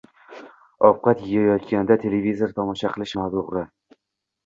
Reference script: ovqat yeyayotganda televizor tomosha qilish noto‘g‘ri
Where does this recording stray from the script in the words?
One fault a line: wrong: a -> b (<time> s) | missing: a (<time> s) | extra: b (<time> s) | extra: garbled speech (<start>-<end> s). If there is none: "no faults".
no faults